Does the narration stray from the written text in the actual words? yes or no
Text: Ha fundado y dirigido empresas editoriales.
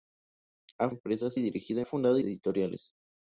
yes